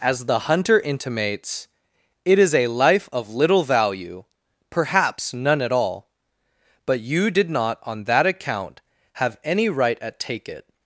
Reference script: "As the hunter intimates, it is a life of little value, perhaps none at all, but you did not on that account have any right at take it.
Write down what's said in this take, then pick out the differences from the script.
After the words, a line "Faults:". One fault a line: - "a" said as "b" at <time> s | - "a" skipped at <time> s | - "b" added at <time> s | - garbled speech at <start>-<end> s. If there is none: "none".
"As the hunter intimates, it is a life of little value, perhaps none at all, but you did not on that account have any right at take it.
Faults:
none